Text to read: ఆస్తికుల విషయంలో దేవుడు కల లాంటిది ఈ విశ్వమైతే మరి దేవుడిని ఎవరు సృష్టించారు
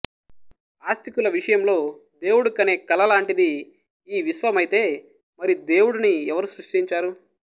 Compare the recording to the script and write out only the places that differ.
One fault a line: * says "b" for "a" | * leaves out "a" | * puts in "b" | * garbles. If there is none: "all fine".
* puts in "కనే"